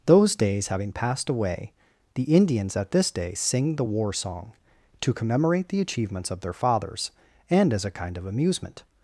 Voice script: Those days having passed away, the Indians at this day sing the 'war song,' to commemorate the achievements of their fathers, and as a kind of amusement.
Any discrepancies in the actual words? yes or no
no